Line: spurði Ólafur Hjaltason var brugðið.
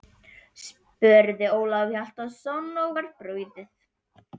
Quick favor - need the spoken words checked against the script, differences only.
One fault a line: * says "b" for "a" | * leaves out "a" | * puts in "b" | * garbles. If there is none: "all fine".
* puts in "og"